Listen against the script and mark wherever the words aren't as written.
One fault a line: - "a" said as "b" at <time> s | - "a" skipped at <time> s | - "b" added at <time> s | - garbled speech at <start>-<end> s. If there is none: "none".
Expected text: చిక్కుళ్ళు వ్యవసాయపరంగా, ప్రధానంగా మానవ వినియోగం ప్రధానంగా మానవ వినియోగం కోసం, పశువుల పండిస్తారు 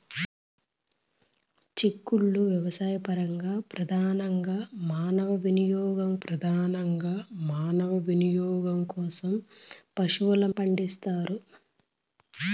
none